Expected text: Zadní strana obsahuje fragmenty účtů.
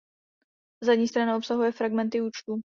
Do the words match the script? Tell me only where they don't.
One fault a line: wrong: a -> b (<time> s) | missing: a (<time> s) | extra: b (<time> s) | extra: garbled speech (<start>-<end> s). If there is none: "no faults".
no faults